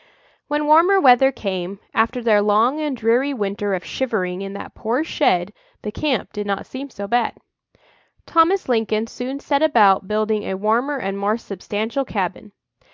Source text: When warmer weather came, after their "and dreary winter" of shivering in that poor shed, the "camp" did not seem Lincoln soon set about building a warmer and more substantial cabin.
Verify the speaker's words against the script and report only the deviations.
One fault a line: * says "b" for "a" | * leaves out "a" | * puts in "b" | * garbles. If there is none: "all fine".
* puts in "long"
* puts in "so bad Thomas"